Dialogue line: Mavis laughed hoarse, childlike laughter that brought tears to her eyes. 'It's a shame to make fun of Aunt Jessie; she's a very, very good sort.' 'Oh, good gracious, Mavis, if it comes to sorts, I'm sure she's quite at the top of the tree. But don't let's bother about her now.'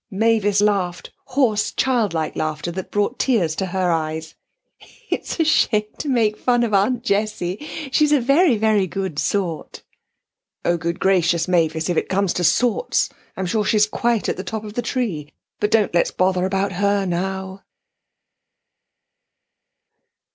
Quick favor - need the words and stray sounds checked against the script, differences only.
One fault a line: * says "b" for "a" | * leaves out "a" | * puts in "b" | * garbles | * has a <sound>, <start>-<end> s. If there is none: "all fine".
all fine